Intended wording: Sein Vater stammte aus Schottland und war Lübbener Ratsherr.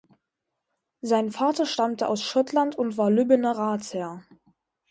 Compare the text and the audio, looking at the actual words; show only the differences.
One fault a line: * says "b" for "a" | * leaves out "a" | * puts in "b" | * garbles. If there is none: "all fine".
all fine